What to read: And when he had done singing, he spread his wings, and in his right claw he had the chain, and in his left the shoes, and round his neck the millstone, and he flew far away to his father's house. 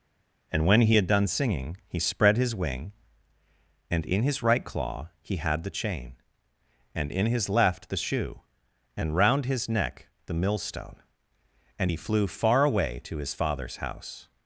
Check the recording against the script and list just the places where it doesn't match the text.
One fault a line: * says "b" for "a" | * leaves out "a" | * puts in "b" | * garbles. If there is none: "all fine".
* says "wing" for "wings"
* says "shoe" for "shoes"